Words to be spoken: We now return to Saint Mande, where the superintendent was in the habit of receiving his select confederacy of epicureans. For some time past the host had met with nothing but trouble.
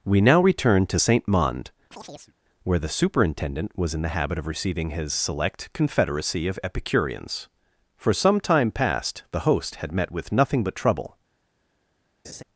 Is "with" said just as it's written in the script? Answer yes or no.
yes